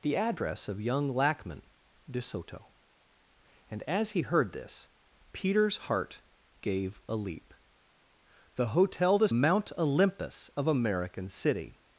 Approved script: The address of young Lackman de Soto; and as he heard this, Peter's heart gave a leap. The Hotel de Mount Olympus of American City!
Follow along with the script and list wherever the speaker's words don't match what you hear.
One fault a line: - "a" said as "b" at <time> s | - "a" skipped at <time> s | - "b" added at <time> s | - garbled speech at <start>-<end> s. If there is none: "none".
none